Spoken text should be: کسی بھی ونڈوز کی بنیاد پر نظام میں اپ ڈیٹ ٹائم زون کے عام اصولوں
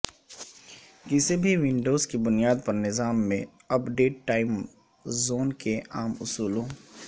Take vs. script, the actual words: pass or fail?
pass